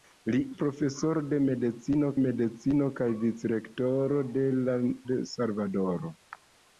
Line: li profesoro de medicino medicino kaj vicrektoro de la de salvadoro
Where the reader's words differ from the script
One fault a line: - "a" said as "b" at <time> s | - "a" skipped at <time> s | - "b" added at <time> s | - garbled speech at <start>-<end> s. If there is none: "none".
none